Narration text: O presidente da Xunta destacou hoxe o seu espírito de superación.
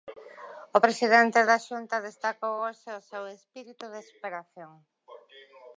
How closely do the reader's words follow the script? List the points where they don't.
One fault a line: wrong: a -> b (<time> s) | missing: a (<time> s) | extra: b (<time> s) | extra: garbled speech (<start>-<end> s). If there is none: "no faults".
no faults